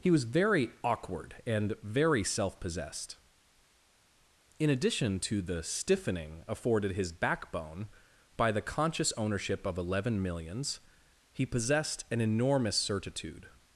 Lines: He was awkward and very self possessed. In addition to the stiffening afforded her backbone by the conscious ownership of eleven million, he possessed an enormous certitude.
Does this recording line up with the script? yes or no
no